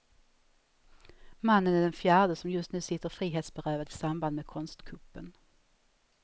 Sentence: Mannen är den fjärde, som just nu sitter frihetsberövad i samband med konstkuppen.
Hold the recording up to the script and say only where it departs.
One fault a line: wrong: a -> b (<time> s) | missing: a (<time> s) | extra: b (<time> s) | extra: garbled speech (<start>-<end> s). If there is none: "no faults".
no faults